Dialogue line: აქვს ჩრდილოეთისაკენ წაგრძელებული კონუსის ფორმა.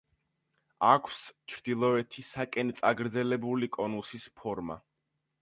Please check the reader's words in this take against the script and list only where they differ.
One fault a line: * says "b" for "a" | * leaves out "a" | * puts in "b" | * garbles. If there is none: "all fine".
all fine